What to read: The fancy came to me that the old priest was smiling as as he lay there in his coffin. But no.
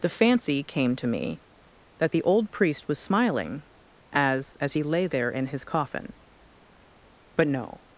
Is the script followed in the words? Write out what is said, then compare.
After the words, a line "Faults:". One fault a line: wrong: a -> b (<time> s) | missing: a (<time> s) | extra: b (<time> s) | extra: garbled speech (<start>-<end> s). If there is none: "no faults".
The fancy came to me that the old priest was smiling as as he lay there in his coffin. But no.
Faults:
no faults